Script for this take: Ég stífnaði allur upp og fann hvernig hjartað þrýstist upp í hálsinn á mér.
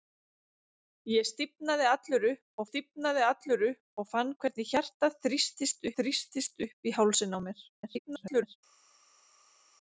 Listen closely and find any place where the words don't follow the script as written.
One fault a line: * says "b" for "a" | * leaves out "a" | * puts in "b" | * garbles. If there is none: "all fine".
* puts in "stífnaði allur upp"
* puts in "þrýstist"
* garbles